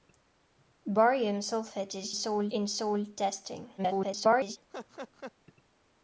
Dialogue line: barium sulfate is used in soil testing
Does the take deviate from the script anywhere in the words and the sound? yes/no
yes